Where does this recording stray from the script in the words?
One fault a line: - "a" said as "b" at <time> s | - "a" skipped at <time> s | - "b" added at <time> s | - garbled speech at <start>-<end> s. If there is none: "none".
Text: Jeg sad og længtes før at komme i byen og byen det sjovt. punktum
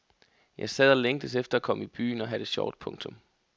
- "før" said as "efter" at 1.4 s
- "byen" said as "have" at 2.3 s